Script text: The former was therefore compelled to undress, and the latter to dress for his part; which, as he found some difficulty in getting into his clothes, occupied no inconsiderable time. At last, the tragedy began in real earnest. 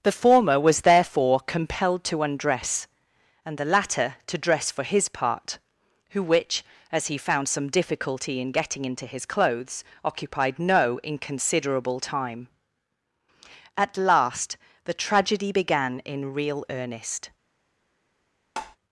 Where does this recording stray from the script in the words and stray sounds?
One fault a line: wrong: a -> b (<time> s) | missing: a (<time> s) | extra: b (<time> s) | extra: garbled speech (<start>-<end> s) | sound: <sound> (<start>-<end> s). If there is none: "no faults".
extra: who (6.1 s)
sound: tap (18.6-18.8 s)